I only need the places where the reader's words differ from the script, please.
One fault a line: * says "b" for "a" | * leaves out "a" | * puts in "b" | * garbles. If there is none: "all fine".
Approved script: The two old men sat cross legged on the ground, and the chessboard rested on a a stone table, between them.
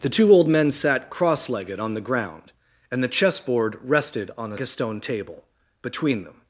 all fine